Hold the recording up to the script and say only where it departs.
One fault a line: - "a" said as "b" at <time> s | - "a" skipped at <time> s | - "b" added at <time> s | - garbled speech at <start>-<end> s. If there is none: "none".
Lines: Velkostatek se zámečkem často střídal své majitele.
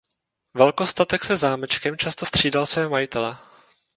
none